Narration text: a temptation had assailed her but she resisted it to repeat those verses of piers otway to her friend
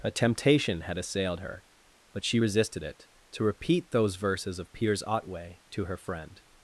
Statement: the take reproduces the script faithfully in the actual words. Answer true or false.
true